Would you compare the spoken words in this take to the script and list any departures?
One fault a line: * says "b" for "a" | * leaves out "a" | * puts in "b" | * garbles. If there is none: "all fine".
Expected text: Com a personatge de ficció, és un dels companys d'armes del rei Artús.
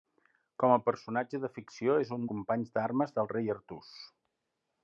* leaves out "dels"